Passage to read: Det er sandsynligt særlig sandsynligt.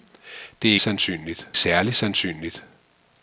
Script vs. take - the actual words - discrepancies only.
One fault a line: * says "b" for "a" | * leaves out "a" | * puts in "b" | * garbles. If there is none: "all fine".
all fine